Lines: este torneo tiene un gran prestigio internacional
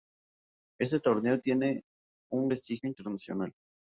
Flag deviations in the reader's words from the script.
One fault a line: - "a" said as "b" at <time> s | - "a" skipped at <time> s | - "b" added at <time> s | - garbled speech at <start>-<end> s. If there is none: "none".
- "gran" skipped at 2.5 s